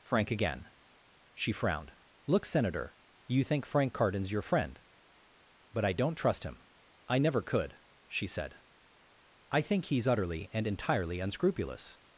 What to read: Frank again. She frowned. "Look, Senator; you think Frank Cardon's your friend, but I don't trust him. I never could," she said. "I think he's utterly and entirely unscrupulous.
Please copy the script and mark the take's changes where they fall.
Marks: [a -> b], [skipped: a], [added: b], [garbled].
Frank again. She frowned. "Look, Senator; you think Frank Cardon's your friend, but I don't trust him. I never could," she said. "I think he's utterly and entirely unscrupulous.